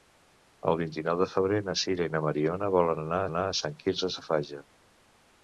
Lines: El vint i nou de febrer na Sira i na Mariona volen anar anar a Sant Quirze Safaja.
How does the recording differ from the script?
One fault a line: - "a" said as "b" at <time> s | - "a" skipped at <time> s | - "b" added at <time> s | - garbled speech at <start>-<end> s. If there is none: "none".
none